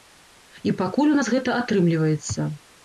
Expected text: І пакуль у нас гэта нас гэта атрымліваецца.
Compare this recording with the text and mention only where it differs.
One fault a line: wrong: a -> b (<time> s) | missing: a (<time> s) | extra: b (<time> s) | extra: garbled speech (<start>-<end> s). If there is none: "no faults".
missing: нас гэта (1.6 s)